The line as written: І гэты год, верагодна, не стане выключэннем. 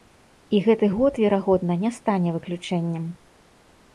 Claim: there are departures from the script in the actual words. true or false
false